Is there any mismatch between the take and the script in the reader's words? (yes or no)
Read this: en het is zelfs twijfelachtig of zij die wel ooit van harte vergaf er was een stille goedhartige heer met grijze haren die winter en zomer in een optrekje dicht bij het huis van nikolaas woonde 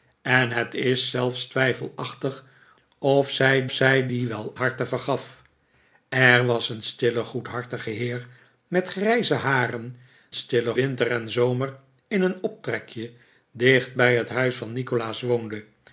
yes